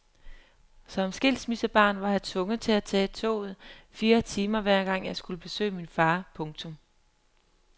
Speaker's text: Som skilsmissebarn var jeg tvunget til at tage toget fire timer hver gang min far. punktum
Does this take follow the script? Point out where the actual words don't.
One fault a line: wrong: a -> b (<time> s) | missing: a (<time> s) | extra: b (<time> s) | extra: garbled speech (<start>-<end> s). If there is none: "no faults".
extra: jeg skulle besøge (5.0 s)